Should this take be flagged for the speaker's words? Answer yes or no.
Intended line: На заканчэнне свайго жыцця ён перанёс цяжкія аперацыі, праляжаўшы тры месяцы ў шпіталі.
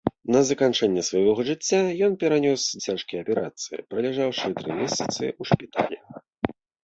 no